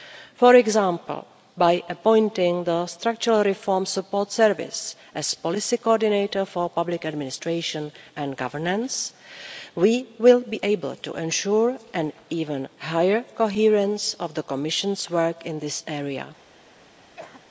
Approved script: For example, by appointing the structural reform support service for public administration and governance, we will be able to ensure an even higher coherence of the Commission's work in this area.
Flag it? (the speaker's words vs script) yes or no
yes